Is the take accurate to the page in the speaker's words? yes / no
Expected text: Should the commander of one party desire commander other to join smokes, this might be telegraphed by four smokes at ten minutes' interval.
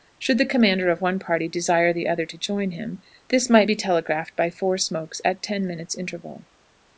no